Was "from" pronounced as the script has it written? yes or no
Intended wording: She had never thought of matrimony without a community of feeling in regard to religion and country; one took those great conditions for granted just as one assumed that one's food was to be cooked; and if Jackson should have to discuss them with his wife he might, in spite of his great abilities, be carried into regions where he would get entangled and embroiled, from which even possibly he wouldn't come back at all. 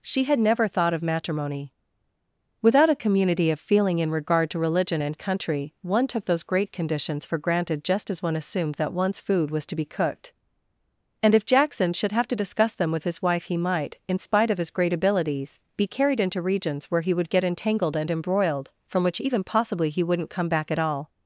yes